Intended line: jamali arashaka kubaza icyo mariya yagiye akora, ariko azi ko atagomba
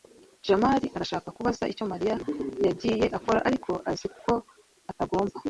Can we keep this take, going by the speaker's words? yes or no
yes